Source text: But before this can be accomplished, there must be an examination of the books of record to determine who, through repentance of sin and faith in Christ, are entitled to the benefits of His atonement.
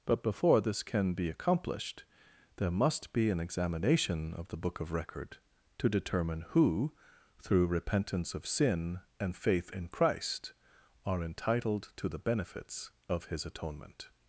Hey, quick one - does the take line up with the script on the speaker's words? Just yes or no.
no